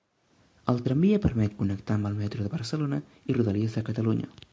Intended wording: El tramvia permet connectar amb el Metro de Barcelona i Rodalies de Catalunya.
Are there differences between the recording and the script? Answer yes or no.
no